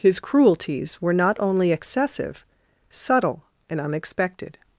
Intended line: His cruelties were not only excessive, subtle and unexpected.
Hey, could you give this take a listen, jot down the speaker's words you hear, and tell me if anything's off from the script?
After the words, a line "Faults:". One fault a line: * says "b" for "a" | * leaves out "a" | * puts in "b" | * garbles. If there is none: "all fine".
His cruelties were not only excessive, subtle and unexpected.
Faults:
all fine